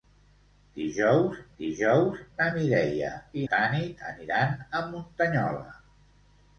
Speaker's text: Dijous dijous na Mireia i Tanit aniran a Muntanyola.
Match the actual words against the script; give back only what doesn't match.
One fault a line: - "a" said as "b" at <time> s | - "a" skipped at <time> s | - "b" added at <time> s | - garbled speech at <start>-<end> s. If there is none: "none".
none